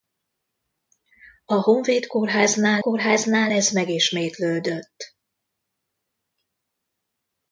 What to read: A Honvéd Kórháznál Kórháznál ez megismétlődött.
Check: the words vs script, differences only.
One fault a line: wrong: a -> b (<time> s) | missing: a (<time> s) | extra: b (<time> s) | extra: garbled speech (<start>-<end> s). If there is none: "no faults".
no faults